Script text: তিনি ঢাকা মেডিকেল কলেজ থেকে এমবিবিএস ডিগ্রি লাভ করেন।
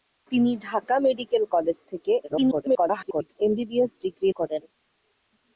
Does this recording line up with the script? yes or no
no